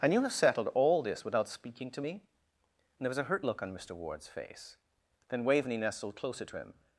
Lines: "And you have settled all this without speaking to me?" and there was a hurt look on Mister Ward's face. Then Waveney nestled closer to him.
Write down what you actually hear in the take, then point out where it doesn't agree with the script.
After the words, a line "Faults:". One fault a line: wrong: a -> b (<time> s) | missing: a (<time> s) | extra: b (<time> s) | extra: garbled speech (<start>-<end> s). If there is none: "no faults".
"And you have settled all this without speaking to me?" and there was a hurt look on Mister Ward's face. Then Waveney nestled closer to him.
Faults:
no faults